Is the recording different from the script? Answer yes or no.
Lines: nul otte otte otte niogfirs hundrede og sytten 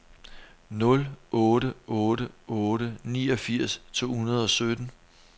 yes